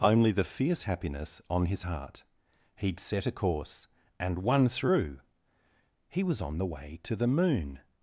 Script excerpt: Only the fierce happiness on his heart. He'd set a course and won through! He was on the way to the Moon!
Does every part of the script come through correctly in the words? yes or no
yes